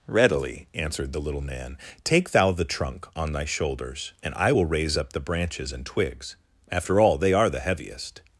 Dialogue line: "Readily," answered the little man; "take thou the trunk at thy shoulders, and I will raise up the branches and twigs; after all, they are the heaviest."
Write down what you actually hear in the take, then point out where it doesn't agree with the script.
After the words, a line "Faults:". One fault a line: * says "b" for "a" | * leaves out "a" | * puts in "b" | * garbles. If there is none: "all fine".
"Readily," answered the little man; "take thou the trunk on thy shoulders, and I will raise up the branches and twigs; after all, they are the heaviest."
Faults:
* says "on" for "at"